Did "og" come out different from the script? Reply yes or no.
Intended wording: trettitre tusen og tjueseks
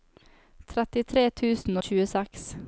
no